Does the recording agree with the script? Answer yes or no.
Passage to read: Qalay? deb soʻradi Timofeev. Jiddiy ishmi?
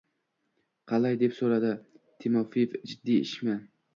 yes